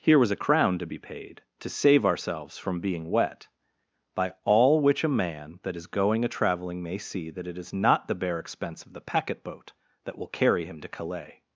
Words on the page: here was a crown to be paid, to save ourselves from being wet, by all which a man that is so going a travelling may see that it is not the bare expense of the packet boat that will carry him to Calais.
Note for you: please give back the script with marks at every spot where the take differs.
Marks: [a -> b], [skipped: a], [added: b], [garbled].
here was a crown to be paid, to save ourselves from being wet, by all which a man that is [skipped: so] going a travelling may see that it is not the bare expense of the packet boat that will carry him to Calais.